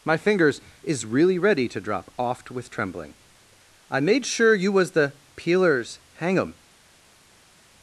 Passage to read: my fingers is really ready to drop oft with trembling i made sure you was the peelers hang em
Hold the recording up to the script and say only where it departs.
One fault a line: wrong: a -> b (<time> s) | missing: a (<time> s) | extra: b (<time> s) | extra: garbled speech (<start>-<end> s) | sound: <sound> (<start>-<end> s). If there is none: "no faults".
no faults